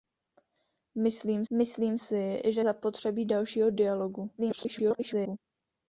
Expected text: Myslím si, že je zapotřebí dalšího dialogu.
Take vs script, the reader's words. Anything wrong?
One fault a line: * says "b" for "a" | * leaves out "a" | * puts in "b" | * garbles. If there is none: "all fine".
* puts in "myslím"
* leaves out "je"
* garbles